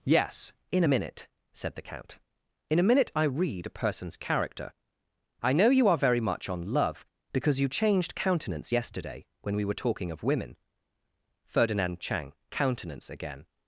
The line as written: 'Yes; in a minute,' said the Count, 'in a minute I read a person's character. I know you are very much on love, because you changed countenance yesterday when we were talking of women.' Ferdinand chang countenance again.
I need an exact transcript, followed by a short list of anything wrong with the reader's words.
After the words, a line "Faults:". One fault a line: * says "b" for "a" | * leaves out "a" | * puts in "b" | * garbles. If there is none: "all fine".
'Yes; in a minute,' said the Count, 'in a minute I read a person's character. I know you are very much on love, because you changed countenance yesterday when we were talking of women.' Ferdinand chang countenance again.
Faults:
all fine